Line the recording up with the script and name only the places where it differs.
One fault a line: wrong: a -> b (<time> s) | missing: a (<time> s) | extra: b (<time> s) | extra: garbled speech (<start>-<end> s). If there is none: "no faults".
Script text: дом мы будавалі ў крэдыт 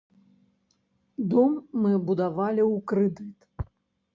no faults